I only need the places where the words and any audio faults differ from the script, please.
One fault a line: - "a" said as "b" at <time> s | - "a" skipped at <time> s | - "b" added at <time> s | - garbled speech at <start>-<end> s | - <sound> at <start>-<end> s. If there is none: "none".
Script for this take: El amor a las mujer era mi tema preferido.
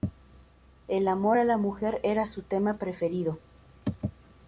- "las" said as "la" at 1.4 s
- "mi" said as "su" at 2.3 s